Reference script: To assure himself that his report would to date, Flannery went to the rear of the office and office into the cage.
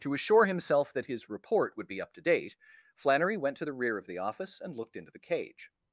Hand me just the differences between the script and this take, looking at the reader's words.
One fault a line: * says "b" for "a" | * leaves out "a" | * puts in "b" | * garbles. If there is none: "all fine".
* puts in "be up"
* says "looked" for "office"